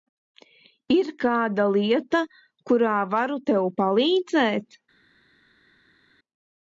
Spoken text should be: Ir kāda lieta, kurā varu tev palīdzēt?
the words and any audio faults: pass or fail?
pass